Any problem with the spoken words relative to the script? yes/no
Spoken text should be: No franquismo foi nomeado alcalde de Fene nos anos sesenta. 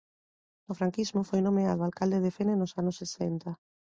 no